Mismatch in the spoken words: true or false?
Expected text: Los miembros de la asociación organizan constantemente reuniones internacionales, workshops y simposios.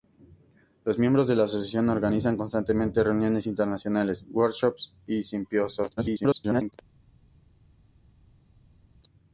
true